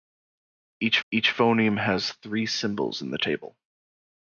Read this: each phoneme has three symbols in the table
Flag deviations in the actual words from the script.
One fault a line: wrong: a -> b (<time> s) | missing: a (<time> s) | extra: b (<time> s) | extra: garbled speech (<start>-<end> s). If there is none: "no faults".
extra: each (1.1 s)